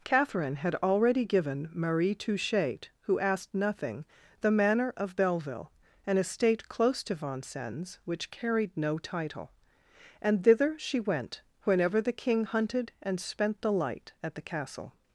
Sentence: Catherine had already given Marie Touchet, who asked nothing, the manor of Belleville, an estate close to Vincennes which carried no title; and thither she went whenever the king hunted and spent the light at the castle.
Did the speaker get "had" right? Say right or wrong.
right